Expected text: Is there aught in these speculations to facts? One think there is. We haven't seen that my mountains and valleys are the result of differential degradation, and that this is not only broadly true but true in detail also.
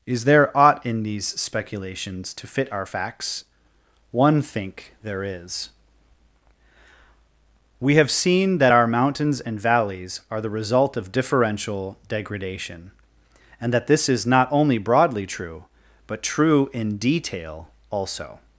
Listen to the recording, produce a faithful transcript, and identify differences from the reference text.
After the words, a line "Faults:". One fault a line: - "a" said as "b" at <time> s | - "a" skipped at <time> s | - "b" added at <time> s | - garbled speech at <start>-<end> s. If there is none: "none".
Is there aught in these speculations to fit our facts? One think there is. We have seen that our mountains and valleys are the result of differential degradation, and that this is not only broadly true but true in detail also.
Faults:
- "fit our" added at 2.5 s
- "haven't" said as "have" at 7.9 s
- "my" said as "our" at 8.7 s